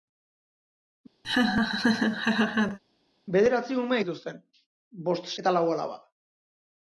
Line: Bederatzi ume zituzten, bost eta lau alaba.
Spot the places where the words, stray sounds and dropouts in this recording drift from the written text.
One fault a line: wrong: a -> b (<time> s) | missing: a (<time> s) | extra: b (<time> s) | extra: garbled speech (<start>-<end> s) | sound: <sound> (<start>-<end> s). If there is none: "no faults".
sound: laugh (1.2-2.8 s)